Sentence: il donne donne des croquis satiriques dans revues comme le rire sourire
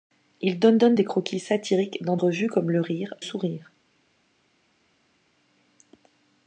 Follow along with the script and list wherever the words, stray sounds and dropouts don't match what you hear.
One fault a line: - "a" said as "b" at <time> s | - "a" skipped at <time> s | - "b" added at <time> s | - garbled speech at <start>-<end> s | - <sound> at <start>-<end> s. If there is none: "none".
none